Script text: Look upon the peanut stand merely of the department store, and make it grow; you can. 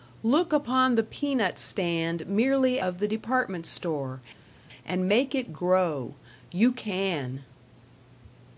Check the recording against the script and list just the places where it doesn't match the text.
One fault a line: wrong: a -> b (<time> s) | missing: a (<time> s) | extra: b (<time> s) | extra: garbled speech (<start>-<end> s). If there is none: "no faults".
no faults